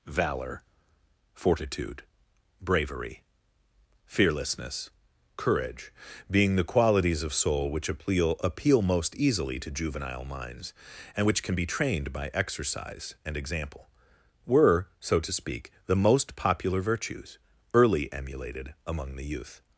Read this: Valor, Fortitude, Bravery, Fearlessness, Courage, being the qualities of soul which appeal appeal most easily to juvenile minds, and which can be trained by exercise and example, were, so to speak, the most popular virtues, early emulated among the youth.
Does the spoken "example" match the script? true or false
true